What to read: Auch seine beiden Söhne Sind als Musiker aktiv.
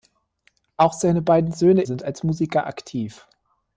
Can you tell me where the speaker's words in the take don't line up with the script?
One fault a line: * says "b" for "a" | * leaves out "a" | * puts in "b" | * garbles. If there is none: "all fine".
all fine